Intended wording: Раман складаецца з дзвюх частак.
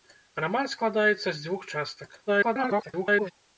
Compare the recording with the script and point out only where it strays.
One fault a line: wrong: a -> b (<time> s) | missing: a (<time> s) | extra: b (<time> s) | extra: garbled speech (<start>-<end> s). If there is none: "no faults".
extra: garbled speech (2.3-3.3 s)